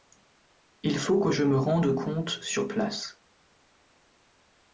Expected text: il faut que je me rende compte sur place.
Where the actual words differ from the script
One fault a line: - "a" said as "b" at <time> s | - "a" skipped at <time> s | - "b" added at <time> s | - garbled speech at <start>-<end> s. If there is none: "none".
none